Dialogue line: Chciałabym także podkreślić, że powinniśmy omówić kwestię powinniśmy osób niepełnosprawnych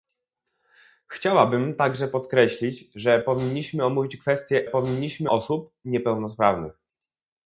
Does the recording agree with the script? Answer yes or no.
yes